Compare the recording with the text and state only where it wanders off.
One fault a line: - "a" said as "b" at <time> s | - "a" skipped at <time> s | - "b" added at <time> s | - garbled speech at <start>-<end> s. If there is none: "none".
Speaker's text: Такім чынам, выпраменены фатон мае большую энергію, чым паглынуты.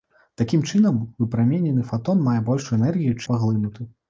- "чым" skipped at 3.2 s